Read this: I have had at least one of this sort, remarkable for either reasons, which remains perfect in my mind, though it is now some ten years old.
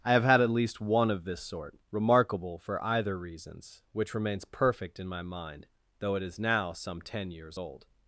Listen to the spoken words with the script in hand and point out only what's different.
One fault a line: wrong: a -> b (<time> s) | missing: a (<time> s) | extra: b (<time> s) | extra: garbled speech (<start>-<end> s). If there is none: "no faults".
no faults